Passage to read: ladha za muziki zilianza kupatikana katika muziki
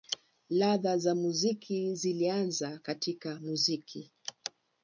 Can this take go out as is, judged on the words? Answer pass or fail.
fail